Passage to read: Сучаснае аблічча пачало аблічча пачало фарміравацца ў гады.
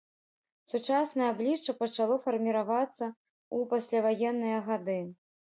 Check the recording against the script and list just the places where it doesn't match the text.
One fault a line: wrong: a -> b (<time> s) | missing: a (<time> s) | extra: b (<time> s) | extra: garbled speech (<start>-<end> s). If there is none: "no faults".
missing: аблічча пачало (2.1 s)
extra: пасляваенныя (3.8 s)